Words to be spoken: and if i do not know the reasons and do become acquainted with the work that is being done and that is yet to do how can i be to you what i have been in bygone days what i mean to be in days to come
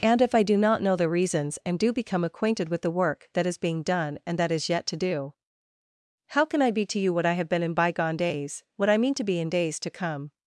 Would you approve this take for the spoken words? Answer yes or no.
yes